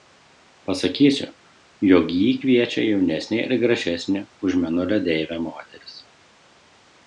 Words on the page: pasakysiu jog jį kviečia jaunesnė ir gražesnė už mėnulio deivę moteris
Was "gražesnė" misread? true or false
false